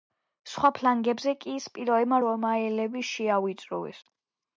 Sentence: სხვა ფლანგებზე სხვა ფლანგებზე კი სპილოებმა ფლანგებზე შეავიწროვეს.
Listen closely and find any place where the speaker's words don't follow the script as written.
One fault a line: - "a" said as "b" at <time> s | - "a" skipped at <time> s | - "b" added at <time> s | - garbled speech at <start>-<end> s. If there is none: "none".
- "სხვა ფლანგებზე" skipped at 1.3 s
- "ფლანგებზე" said as "რომაელები" at 2.3 s